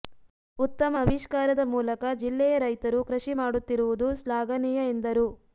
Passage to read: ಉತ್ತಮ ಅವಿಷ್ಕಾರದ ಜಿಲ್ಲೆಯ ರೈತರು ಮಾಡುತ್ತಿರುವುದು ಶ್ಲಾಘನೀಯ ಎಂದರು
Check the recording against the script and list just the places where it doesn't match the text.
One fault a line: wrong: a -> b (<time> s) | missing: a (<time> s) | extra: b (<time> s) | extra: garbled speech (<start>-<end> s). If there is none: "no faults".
extra: ಮೂಲಕ (1.7 s)
extra: ಕೃಷಿ (3.1 s)